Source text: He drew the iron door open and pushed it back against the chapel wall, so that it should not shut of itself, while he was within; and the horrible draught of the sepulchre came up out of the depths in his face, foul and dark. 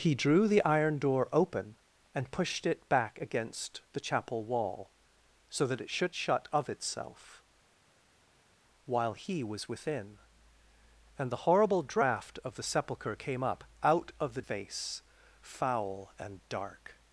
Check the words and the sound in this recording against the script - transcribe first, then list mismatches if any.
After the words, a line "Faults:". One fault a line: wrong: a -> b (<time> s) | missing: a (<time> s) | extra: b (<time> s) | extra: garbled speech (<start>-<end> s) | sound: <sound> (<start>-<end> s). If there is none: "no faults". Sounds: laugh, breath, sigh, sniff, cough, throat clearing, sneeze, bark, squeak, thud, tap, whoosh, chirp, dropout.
He drew the iron door open and pushed it back against the chapel wall, so that it should shut of itself, while he was within; and the horrible draught of the sepulchre came up out of the face, foul and dark.
Faults:
missing: not (6.2 s)
missing: depths in his (14.4 s)